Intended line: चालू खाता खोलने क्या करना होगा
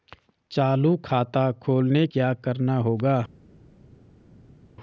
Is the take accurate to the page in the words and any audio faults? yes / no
yes